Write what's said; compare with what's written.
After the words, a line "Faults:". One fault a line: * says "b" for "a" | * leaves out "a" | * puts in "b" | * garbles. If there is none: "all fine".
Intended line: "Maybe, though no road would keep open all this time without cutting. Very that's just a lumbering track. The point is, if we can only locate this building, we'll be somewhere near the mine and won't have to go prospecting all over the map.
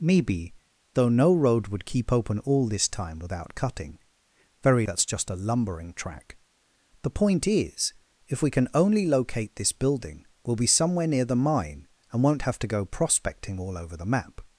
"Maybe, though no road would keep open all this time without cutting. Very that's just a lumbering track. The point is, if we can only locate this building, we'll be somewhere near the mine and won't have to go prospecting all over the map.
Faults:
all fine